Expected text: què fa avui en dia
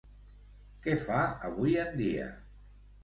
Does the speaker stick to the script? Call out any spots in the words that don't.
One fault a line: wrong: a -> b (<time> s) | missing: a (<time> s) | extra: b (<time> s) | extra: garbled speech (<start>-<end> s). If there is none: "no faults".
no faults